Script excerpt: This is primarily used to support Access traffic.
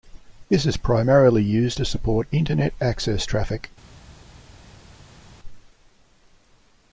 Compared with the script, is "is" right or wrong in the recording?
right